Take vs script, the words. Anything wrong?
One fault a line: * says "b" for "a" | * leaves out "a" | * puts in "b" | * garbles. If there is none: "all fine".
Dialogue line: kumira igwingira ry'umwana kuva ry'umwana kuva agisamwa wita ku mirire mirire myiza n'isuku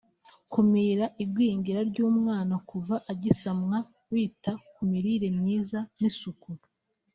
* leaves out "ry'umwana kuva"
* leaves out "mirire"